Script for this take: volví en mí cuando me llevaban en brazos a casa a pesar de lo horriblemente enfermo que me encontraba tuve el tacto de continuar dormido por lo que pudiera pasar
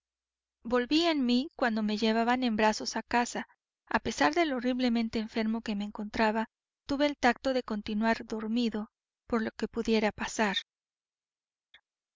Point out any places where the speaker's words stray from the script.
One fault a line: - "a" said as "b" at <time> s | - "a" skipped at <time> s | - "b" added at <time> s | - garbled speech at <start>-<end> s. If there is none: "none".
none